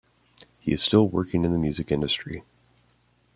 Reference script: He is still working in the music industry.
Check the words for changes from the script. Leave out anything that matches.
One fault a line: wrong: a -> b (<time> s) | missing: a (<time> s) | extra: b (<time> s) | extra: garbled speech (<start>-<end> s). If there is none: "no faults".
no faults